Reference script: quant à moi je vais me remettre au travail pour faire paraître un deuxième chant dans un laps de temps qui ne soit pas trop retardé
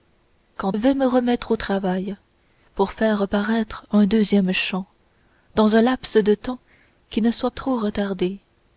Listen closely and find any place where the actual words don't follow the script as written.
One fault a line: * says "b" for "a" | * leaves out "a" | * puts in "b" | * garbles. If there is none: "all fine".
* leaves out "à moi je"
* leaves out "pas"